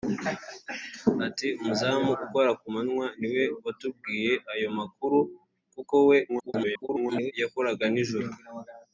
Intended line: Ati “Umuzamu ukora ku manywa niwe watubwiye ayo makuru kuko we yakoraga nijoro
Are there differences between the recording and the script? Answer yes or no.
yes